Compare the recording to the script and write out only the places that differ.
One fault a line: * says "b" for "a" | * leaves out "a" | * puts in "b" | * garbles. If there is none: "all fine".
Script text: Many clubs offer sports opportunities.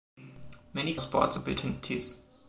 * leaves out "clubs offer"